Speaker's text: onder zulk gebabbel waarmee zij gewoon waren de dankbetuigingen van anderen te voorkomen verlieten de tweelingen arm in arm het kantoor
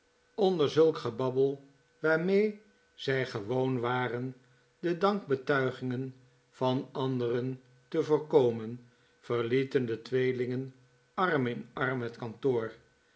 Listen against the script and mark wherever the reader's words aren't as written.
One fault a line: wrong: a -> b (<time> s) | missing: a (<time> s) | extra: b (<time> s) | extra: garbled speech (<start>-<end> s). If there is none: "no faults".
no faults